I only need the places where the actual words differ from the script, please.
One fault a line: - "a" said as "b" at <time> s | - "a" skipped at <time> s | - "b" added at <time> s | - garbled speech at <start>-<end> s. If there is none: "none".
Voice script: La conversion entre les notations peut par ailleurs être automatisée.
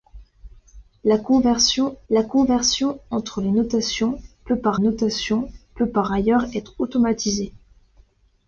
- "la conversion" added at 2.1 s
- "notations peut par" added at 4.8 s